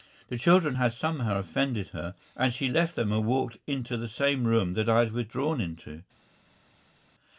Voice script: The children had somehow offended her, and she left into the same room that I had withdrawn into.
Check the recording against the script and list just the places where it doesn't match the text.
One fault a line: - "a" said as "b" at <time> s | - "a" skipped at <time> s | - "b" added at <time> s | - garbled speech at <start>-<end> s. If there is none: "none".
- "them and walked" added at 3.0 s